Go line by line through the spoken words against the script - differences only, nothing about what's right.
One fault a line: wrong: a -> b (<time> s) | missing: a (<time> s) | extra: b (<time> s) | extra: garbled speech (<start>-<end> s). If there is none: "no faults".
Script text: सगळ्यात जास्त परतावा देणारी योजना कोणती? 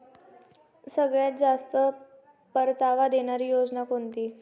no faults